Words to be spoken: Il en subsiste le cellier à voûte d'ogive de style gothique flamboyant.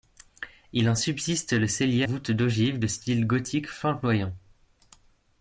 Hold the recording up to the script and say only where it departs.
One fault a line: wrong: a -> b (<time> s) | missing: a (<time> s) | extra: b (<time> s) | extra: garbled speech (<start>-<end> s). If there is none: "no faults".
missing: à (2.0 s)